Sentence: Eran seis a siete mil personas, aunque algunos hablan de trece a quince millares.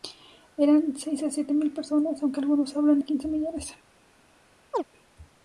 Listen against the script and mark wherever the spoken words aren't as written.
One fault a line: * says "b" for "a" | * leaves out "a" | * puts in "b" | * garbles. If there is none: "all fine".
* leaves out "de trece"